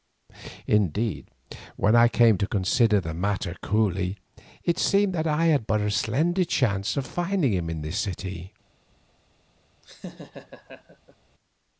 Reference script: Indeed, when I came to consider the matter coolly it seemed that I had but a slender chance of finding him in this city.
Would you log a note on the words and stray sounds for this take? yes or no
yes